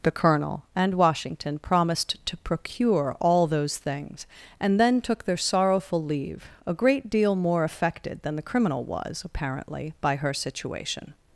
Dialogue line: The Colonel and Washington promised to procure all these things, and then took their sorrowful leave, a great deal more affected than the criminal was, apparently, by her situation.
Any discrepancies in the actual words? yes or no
yes